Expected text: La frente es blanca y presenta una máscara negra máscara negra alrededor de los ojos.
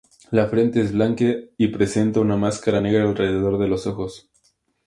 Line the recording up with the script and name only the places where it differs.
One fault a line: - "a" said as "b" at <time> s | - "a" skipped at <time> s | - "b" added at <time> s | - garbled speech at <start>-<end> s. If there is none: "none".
- "máscara negra" skipped at 3.0 s